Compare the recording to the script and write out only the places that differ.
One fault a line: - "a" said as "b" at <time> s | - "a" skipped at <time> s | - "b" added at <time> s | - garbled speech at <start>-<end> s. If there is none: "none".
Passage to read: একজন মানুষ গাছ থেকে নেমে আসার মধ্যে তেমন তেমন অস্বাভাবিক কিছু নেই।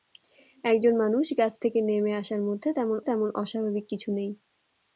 none